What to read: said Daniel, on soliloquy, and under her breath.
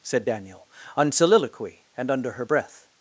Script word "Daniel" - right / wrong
right